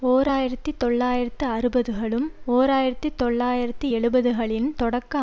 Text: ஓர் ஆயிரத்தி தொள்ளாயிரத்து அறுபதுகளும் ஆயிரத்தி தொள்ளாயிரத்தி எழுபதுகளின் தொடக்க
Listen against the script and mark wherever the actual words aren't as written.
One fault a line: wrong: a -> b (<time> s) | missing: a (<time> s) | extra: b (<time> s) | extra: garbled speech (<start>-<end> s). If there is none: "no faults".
extra: ஓர் (2.5 s)